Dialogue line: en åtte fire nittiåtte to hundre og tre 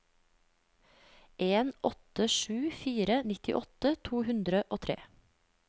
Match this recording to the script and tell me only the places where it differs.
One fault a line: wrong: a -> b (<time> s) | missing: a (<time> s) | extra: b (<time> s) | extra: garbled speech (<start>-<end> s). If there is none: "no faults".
extra: sju (2.3 s)